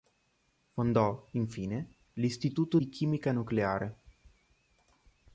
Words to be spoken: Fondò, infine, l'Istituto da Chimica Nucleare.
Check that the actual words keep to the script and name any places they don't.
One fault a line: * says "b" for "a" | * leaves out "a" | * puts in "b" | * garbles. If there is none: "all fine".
* says "di" for "da"